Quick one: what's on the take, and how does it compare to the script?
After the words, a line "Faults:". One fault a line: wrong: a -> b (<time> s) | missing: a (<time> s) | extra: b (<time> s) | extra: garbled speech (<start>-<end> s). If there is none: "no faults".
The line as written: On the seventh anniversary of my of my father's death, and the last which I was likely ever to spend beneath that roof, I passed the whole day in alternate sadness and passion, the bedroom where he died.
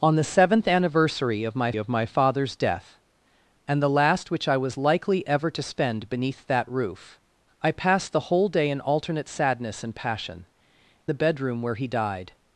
On the seventh anniversary of my of my father's death, and the last which I was likely ever to spend beneath that roof, I passed the whole day in alternate sadness and passion, the bedroom where he died.
Faults:
no faults